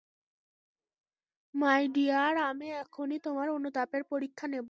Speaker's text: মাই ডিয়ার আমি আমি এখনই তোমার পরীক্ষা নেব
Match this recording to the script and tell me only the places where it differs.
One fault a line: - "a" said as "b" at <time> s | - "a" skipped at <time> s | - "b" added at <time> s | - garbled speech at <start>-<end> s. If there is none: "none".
- "আমি" skipped at 2.6 s
- "অনুতাপের" added at 3.5 s